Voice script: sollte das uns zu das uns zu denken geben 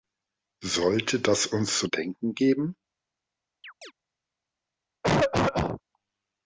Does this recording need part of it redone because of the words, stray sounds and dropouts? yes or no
yes